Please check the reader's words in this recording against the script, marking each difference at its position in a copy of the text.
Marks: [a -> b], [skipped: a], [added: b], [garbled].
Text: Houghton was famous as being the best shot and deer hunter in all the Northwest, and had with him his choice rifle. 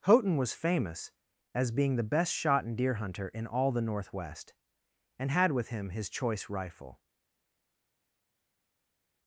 Houghton was famous as being the best shot and deer hunter in all the Northwest, and had with him his choice rifle.